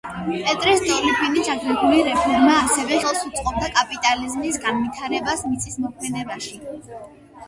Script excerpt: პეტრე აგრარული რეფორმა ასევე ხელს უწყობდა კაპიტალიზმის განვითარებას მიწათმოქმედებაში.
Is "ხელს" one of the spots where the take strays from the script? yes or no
no